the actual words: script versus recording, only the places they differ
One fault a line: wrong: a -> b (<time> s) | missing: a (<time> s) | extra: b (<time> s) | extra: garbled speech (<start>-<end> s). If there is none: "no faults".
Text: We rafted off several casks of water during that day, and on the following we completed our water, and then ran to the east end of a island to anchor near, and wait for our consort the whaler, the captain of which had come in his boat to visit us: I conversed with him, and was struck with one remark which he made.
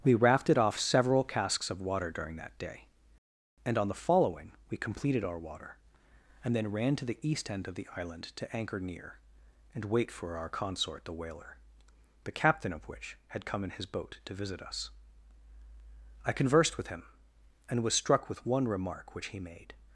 wrong: a -> the (7.8 s)